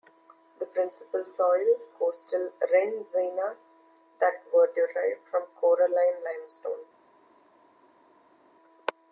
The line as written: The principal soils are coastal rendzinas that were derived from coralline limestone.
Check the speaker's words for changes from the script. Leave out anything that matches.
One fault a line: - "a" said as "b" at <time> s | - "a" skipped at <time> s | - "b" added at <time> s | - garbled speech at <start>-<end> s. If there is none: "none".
- "are" skipped at 1.8 s